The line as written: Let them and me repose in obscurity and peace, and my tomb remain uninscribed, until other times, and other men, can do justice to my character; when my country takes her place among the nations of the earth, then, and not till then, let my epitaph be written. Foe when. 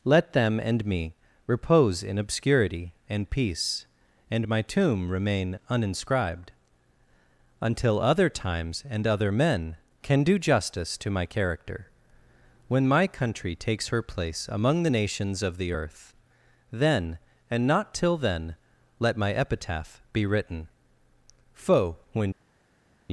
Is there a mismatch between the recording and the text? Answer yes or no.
no